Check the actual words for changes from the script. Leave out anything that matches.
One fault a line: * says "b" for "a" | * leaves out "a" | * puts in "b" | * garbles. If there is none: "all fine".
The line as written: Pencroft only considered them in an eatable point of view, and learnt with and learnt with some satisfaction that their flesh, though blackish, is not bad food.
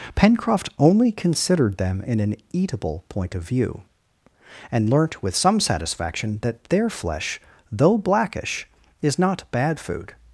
* leaves out "and learnt with"